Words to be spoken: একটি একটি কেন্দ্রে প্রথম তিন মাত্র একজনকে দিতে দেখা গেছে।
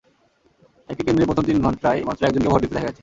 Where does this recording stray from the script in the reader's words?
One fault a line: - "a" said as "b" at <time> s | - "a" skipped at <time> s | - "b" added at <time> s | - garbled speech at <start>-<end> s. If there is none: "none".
- "একটি" skipped at 1.0 s
- "ঘণ্টায়" added at 1.6 s
- "ভোট" added at 2.5 s